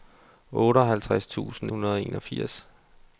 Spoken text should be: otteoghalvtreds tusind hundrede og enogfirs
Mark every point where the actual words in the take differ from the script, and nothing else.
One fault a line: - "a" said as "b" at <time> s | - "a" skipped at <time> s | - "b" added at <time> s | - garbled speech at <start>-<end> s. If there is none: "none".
none